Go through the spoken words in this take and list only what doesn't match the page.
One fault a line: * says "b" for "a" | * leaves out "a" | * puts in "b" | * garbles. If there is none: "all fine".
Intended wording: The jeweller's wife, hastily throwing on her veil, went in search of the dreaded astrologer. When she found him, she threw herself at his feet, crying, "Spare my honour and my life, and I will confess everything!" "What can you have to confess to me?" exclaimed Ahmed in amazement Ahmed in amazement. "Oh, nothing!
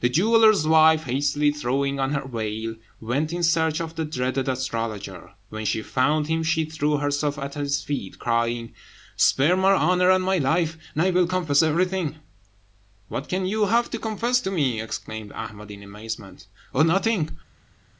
* leaves out "Ahmed in amazement"